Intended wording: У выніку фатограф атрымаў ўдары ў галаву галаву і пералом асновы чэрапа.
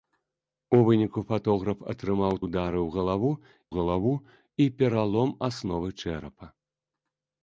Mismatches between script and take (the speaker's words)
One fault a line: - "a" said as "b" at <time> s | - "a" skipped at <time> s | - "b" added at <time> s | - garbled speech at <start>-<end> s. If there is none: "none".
none